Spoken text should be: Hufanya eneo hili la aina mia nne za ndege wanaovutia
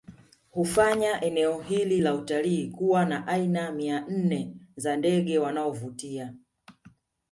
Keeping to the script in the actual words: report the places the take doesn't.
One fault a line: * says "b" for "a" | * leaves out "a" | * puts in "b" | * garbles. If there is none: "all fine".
* puts in "utalii kuwa na"